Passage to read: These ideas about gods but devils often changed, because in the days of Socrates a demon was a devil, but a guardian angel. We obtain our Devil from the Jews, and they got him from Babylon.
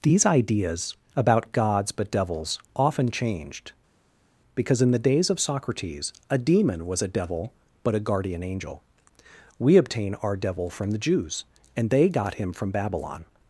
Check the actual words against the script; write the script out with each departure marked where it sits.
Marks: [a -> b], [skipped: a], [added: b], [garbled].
These ideas about gods but devils often changed, because in the days of Socrates a demon was a devil, but a guardian angel. We obtain our Devil from the Jews, and they got him from Babylon.